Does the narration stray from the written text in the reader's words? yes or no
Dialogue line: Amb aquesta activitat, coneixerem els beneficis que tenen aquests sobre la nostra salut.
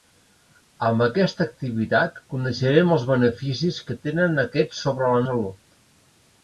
yes